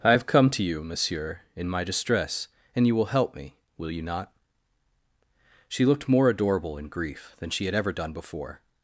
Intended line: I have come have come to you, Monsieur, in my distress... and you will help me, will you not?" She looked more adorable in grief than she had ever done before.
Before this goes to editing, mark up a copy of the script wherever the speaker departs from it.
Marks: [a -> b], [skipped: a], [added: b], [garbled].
I have come [skipped: have come] to you, Monsieur, in my distress... and you will help me, will you not?" She looked more adorable in grief than she had ever done before.